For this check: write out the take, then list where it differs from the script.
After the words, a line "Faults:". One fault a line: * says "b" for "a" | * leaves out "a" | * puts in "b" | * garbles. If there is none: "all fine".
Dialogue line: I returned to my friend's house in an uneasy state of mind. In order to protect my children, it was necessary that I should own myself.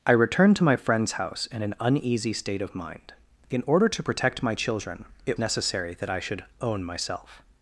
I returned to my friend's house in an uneasy state of mind. In order to protect my children, it necessary that I should own myself.
Faults:
* leaves out "was"